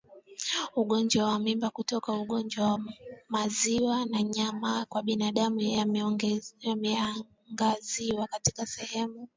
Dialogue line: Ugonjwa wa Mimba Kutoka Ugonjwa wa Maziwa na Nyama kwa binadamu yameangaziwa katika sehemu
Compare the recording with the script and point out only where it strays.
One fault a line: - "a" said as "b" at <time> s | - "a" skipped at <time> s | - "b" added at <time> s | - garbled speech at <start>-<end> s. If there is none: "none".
none